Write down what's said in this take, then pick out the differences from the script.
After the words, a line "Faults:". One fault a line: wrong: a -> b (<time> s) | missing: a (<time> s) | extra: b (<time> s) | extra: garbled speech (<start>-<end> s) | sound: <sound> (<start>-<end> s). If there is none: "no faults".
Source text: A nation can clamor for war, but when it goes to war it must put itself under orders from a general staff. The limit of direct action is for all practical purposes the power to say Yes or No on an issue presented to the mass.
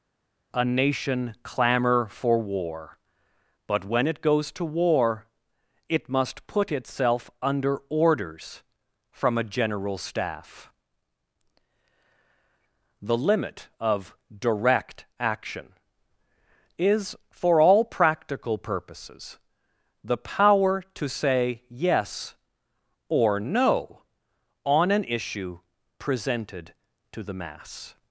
A nation clamor for war, but when it goes to war it must put itself under orders from a general staff. The limit of direct action is for all practical purposes the power to say Yes or No on an issue presented to the mass.
Faults:
missing: can (1.4 s)